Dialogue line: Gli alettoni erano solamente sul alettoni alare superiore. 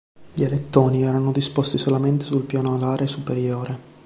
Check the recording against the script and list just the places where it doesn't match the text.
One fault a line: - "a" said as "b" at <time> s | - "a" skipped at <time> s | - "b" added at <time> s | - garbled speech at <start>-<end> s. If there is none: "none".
- "disposti" added at 1.3 s
- "alettoni" said as "piano" at 2.5 s